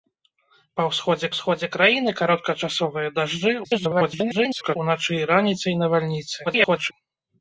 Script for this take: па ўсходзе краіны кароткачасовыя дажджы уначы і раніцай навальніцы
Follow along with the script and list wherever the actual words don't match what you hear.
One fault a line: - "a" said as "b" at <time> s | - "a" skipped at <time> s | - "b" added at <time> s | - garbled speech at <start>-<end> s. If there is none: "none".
- "ўсходзе" added at 1.3 s
- garbled speech at 3.6-4.8 s
- garbled speech at 6.4-6.9 s